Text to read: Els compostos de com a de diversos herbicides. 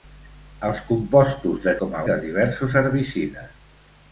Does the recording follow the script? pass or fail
pass